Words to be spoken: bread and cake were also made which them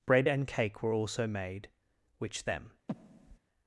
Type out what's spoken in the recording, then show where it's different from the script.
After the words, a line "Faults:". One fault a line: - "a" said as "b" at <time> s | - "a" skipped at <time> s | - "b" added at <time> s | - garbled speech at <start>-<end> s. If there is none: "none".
bread and cake were also made which them
Faults:
none